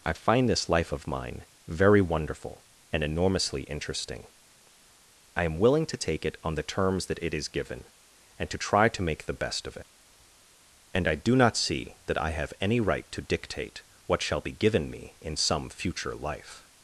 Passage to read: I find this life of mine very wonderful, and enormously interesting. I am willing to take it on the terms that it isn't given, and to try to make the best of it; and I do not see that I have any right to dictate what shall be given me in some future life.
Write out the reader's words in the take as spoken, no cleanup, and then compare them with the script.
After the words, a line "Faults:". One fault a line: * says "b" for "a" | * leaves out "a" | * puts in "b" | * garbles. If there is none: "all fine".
I find this life of mine very wonderful, and enormously interesting. I am willing to take it on the terms that it is given, and to try to make the best of it; and I do not see that I have any right to dictate what shall be given me in some future life.
Faults:
* says "is" for "isn't"